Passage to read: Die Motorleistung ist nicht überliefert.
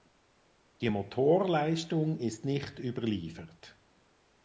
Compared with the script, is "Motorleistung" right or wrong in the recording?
right